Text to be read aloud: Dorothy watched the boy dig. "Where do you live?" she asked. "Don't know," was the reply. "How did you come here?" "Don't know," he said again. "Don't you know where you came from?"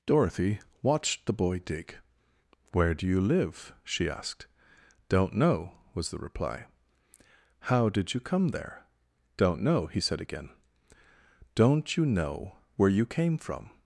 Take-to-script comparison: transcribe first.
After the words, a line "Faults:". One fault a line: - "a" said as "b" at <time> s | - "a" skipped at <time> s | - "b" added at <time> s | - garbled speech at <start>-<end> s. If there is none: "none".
Dorothy watched the boy dig. "Where do you live?" she asked. "Don't know," was the reply. "How did you come there?" "Don't know," he said again. "Don't you know where you came from?"
Faults:
- "here" said as "there" at 8.5 s